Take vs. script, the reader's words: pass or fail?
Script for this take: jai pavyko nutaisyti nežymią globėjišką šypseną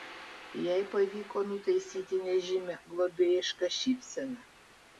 pass